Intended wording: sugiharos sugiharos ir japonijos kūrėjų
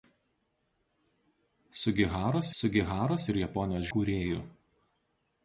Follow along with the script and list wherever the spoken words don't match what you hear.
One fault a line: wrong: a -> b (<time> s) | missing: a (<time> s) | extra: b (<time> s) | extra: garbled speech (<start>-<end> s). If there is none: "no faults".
no faults